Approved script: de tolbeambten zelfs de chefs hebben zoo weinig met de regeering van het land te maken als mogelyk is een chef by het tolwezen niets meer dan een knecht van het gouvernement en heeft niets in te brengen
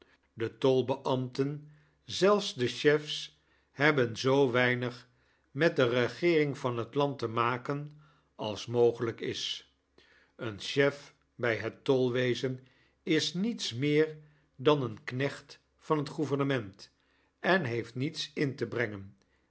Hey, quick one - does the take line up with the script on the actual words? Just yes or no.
no